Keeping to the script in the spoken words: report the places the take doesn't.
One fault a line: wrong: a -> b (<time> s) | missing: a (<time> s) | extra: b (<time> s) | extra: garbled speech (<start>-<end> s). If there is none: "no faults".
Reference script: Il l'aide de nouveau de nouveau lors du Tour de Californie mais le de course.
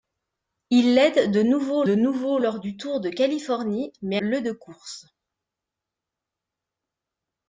no faults